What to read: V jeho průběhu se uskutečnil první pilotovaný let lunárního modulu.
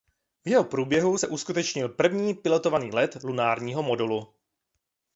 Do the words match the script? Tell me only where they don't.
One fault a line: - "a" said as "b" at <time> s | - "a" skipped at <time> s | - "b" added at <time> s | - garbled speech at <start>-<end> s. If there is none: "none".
none